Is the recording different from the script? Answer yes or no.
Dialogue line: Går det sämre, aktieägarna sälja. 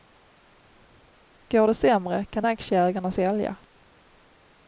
yes